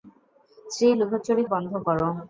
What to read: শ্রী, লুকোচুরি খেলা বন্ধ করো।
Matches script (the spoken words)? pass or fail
fail